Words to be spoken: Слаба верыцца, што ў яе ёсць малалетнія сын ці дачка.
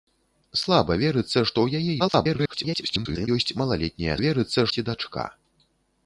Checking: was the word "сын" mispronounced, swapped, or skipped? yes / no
yes